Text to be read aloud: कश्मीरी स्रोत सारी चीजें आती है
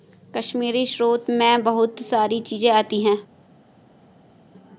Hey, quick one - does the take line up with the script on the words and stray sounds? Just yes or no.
no